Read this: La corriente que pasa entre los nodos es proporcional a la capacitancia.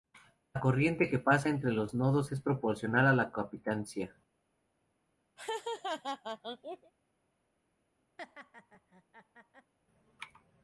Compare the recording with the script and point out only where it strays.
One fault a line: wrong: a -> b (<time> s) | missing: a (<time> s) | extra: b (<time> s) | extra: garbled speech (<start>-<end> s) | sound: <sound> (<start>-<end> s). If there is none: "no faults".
sound: laugh (5.4-6.9 s)
sound: laugh (8.2-9.7 s)